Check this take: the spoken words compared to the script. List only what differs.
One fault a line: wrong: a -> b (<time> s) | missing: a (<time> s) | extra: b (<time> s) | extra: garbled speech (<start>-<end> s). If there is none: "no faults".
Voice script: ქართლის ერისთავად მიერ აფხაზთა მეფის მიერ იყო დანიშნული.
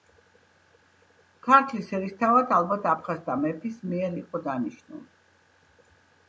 wrong: მიერ -> ალბათ (2.6 s)